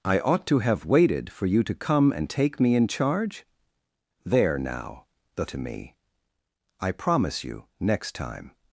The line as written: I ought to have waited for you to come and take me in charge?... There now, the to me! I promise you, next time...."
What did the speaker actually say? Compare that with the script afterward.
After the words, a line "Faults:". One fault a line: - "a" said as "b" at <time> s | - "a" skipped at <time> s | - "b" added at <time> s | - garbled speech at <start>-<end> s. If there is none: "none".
I ought to have waited for you to come and take me in charge?... There now, the to me! I promise you, next time...."
Faults:
none